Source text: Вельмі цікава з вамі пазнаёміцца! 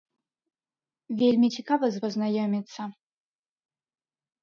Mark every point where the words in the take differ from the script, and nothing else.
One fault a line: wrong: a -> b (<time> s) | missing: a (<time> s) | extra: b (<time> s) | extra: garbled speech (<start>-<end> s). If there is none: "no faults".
missing: вамі (2.0 s)